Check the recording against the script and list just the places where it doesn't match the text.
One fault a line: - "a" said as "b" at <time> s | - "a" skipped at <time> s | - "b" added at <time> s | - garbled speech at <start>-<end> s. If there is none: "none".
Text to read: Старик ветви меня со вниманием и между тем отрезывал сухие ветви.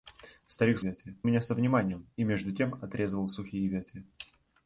none